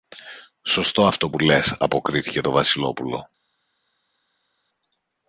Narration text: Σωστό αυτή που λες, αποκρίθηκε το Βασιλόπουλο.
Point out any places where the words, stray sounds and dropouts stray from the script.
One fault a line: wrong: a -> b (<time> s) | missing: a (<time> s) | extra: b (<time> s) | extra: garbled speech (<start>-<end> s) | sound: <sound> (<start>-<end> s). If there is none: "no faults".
wrong: αυτή -> αυτό (1.0 s)